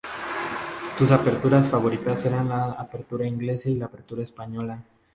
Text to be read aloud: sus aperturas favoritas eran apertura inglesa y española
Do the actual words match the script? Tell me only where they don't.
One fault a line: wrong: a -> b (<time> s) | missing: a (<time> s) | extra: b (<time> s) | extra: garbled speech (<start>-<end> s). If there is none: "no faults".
extra: la (2.5 s)
extra: la apertura (3.7 s)